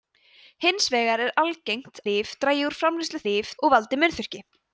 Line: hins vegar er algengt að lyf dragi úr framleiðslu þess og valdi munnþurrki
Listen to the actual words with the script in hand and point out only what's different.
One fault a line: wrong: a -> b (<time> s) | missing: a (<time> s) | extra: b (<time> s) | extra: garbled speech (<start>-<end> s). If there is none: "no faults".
missing: að (2.0 s)
wrong: þess -> lyf (3.3 s)